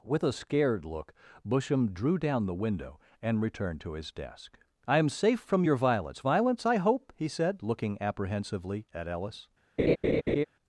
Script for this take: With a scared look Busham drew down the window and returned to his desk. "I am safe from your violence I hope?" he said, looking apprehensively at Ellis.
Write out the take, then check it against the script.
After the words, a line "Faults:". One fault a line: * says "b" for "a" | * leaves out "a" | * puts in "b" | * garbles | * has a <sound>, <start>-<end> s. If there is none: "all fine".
With a scared look Busham drew down the window and returned to his desk. "I am safe from your violence violence I hope?" he said, looking apprehensively at Ellis.
Faults:
* puts in "violence"
* has a laugh, 9.8-10.4 s